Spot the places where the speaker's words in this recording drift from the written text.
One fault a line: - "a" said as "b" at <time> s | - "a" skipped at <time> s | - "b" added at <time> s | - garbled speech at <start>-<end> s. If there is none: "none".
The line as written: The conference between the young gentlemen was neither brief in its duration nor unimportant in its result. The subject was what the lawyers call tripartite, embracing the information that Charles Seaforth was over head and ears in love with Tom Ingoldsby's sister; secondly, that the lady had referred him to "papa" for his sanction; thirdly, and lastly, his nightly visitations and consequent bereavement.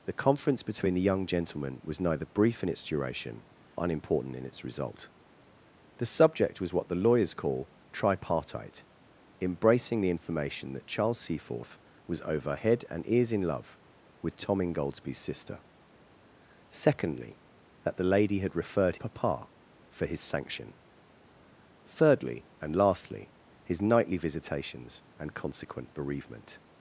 - "nor" skipped at 3.4 s
- "him to" skipped at 19.0 s